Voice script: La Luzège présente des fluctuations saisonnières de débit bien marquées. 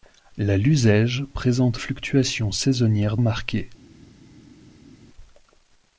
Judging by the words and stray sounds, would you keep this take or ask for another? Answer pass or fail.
fail